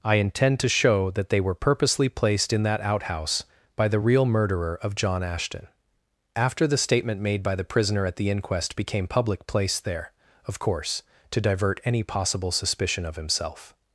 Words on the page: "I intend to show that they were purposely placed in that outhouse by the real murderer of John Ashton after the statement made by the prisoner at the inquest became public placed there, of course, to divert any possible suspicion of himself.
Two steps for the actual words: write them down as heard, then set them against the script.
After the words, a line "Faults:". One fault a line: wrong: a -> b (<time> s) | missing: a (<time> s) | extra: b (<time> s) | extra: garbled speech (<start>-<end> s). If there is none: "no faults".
"I intend to show that they were purposely placed in that outhouse by the real murderer of John Ashton after the statement made by the prisoner at the inquest became public placed there, of course, to divert any possible suspicion of himself.
Faults:
no faults